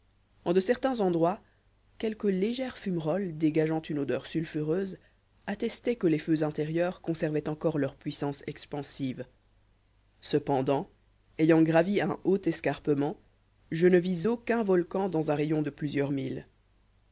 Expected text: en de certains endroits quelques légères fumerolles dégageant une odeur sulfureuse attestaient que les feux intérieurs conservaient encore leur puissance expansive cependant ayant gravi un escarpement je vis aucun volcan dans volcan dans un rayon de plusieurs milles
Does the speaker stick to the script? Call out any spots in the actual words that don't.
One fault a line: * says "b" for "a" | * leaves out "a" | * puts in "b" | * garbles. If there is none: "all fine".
* puts in "haut"
* puts in "ne"
* leaves out "volcan dans"